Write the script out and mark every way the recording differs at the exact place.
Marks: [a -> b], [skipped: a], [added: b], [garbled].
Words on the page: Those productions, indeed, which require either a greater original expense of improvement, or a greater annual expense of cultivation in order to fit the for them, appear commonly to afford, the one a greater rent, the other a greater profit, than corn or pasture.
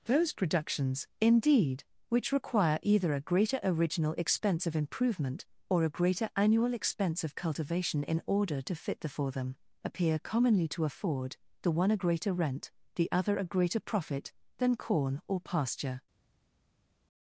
Those productions, indeed, which require either a greater original expense of improvement, or a greater annual expense of cultivation in order to fit the for them, appear commonly to afford, the one a greater rent, the other a greater profit, than corn or pasture.